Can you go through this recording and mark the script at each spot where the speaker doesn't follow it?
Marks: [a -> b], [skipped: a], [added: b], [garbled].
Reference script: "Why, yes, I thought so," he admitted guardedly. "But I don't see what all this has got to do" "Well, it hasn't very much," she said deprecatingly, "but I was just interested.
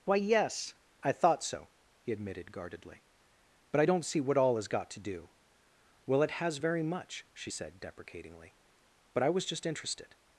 "Why, yes, I thought so," he admitted guardedly. "But I don't see what all [skipped: this] has got to do" "Well, it [hasn't -> has] very much," she said deprecatingly, "but I was just interested.